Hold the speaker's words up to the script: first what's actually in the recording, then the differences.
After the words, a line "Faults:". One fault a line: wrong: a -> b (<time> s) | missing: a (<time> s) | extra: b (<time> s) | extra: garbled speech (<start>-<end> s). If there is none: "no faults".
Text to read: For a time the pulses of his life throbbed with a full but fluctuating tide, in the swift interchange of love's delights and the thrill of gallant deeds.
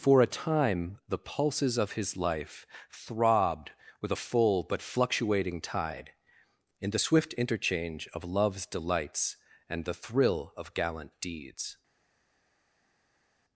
For a time the pulses of his life throbbed with a full but fluctuating tide, in the swift interchange of love's delights and the thrill of gallant deeds.
Faults:
no faults